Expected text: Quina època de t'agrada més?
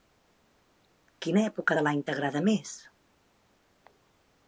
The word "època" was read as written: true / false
true